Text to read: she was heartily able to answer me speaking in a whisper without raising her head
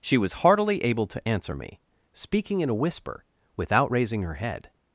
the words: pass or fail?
pass